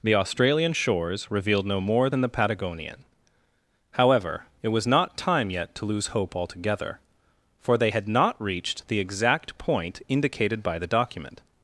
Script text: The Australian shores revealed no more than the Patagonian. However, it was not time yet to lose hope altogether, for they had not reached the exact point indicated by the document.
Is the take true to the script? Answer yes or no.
yes